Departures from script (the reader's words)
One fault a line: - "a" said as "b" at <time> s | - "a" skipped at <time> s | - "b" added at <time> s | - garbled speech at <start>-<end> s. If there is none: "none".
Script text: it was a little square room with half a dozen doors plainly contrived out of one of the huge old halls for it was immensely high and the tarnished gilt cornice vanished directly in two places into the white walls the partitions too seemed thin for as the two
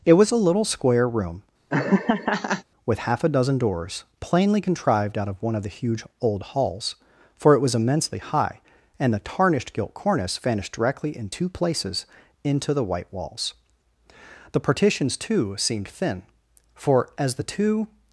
none